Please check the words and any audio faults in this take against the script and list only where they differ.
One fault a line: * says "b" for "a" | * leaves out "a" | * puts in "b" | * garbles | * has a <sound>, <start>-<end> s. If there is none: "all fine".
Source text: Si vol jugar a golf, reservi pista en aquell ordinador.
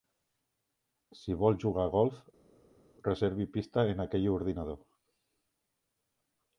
all fine